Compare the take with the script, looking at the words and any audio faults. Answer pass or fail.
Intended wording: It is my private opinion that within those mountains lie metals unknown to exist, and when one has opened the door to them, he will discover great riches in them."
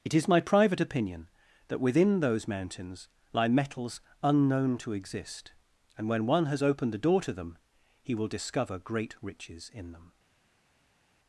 pass